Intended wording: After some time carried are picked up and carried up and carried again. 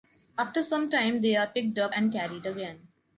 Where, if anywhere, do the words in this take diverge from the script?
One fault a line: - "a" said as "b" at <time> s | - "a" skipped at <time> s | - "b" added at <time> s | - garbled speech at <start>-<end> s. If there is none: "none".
- "carried" said as "they" at 1.2 s
- "up and carried" skipped at 2.4 s